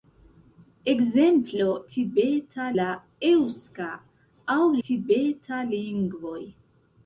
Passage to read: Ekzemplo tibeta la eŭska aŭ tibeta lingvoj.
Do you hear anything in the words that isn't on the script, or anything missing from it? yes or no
no